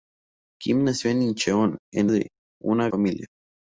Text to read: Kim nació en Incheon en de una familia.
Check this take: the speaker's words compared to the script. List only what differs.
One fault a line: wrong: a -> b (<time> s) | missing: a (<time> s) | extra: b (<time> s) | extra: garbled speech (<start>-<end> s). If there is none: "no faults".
no faults